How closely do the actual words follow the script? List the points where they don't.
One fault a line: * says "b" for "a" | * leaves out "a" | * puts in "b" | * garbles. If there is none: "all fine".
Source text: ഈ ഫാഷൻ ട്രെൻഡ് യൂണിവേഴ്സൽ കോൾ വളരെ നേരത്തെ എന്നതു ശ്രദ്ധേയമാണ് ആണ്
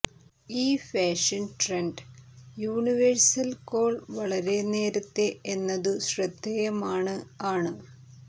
all fine